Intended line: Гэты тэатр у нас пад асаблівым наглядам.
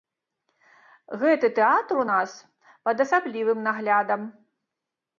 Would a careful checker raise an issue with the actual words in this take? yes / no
no